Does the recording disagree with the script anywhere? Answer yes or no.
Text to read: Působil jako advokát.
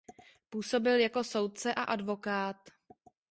yes